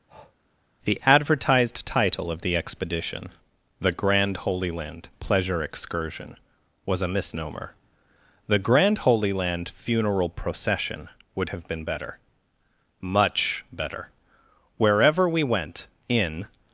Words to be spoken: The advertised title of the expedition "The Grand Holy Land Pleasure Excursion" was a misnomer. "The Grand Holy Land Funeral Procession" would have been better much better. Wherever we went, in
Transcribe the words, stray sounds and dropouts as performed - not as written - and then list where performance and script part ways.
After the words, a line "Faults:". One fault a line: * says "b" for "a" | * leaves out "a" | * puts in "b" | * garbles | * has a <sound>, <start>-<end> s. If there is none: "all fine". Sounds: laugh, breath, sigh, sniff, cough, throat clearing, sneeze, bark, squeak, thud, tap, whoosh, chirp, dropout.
The advertised title of the expedition "The Grand Holy Land Pleasure Excursion" was a misnomer. "The Grand Holy Land Funeral Procession" would have been better much better. Wherever we went, in
Faults:
* has a breath, 0.1-0.4 s